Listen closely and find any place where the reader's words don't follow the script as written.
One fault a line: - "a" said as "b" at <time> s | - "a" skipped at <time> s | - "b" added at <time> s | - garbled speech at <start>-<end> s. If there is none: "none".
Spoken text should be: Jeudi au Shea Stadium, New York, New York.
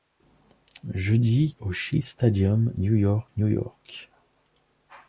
none